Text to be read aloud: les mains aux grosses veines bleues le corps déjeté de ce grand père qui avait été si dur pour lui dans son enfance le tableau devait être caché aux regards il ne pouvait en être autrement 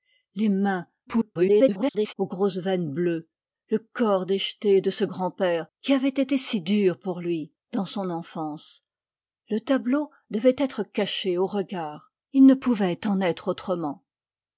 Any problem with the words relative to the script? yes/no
yes